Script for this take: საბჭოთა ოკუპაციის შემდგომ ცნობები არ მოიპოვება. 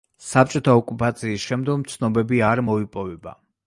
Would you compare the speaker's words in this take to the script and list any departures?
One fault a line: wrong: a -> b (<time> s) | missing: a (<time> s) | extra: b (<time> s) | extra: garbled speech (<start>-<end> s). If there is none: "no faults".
no faults